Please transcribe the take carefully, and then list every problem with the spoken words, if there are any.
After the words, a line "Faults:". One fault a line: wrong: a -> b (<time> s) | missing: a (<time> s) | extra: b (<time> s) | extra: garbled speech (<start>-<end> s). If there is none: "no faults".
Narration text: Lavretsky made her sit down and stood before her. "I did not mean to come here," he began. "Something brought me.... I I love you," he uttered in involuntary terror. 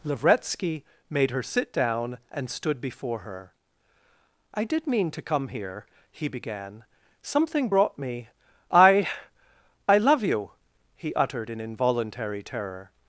Lavretsky made her sit down and stood before her. "I did mean to come here," he began. "Something brought me.... I I love you," he uttered in involuntary terror.
Faults:
missing: not (4.9 s)